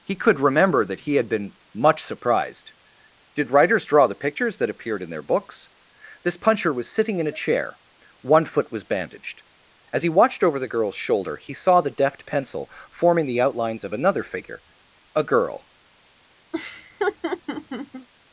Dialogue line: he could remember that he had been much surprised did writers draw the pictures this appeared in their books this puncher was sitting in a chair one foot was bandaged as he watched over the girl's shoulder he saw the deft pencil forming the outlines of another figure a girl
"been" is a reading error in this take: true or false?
false